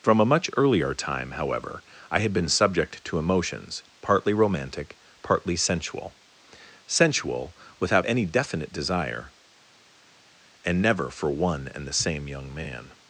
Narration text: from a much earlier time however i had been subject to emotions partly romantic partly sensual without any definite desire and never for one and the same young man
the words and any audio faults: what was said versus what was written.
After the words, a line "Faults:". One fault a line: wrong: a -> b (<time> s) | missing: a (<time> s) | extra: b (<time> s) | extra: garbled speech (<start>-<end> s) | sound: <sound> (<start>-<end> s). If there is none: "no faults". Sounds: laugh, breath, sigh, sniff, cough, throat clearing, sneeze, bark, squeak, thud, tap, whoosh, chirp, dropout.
from a much earlier time however i had been subject to emotions partly romantic partly sensual sensual without any definite desire and never for one and the same young man
Faults:
extra: sensual (6.9 s)